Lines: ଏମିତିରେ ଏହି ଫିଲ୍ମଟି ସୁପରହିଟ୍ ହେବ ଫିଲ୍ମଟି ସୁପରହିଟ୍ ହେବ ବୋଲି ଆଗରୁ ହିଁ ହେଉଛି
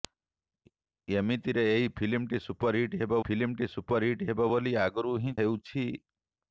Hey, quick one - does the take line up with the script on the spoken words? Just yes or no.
yes